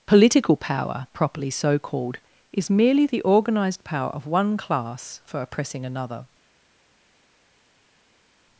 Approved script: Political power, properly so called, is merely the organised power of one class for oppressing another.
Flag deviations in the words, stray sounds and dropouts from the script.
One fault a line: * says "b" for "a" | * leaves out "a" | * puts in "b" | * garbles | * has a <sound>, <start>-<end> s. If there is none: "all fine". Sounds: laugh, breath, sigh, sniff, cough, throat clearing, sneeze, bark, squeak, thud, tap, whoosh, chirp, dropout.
all fine